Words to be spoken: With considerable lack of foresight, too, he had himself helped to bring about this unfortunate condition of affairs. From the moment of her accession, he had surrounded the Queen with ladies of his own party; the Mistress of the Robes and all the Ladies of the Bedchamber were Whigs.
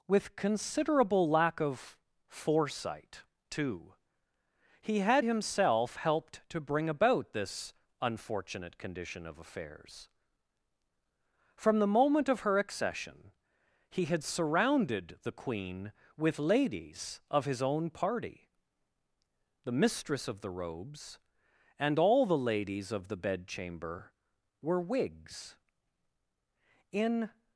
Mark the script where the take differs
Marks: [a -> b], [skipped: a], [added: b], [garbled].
With considerable lack of foresight, too, he had himself helped to bring about this unfortunate condition of affairs. From the moment of her accession, he had surrounded the Queen with ladies of his own party; the Mistress of the Robes and all the Ladies of the Bedchamber were Whigs. [added: In]